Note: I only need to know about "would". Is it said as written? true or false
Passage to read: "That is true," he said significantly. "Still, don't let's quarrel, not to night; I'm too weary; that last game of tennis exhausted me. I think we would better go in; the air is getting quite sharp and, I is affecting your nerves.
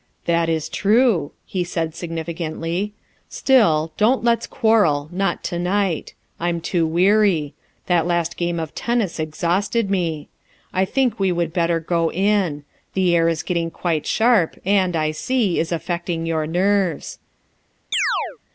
true